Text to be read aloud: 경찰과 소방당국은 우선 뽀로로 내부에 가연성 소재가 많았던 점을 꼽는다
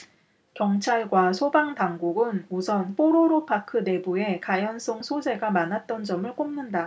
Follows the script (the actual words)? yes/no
no